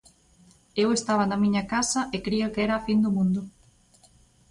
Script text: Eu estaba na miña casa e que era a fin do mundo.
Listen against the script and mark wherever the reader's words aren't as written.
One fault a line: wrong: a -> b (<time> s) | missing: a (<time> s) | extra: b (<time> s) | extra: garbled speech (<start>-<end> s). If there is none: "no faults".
extra: cría (2.2 s)